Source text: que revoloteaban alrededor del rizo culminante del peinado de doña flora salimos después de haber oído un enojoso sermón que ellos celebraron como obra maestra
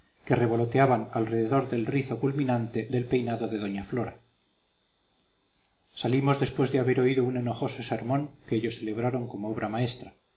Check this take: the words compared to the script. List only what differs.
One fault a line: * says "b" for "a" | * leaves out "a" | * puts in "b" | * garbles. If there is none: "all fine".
all fine